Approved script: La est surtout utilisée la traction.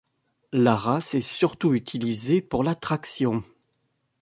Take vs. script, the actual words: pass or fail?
fail